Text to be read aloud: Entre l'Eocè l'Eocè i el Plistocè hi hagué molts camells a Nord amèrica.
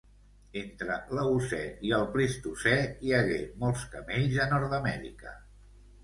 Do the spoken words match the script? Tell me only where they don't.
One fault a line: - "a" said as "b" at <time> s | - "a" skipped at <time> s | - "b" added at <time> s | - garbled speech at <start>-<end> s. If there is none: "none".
- "l'Eocè" skipped at 1.6 s